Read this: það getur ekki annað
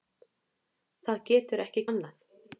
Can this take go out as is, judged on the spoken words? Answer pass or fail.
pass